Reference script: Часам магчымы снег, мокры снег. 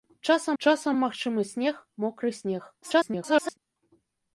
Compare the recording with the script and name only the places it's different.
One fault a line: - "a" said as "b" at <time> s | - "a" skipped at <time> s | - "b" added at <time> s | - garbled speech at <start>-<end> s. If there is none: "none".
- "часам" added at 0.6 s
- garbled speech at 2.8-3.6 s